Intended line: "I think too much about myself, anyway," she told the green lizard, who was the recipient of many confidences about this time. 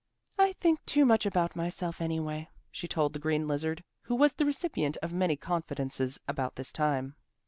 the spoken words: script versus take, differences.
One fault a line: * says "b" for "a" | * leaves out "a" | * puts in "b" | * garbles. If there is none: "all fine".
all fine